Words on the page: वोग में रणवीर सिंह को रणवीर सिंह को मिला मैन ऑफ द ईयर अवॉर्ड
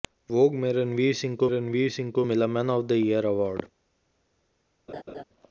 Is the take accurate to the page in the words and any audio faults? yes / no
no